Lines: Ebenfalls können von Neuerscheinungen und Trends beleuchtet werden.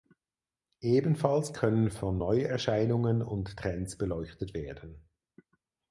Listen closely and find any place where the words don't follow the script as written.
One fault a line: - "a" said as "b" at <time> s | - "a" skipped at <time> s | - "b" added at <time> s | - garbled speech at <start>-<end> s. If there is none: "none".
none